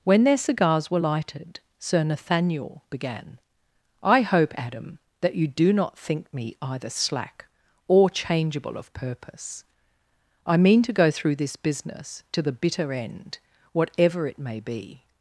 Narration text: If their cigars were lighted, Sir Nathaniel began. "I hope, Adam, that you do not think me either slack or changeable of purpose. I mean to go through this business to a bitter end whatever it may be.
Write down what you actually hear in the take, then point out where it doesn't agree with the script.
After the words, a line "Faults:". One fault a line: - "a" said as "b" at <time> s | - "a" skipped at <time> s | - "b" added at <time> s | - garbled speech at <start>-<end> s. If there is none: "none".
When their cigars were lighted, Sir Nathaniel began. "I hope, Adam, that you do not think me either slack or changeable of purpose. I mean to go through this business to the bitter end whatever it may be.
Faults:
- "If" said as "When" at 0.0 s
- "a" said as "the" at 12.4 s